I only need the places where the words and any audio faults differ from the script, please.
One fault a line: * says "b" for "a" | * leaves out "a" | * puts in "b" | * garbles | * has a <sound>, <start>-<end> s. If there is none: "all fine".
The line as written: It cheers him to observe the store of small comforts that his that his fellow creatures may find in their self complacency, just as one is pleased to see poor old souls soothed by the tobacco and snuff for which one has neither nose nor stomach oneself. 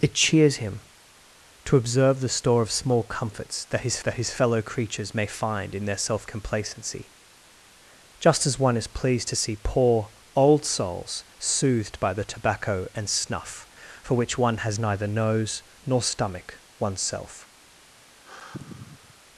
* has a sigh, 18.1-19.2 s